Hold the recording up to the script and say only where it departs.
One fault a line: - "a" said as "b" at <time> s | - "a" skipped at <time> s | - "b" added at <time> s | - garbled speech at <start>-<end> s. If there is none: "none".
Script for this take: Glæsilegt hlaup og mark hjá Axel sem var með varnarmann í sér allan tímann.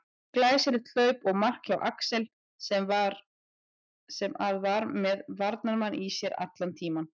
- "að" added at 4.5 s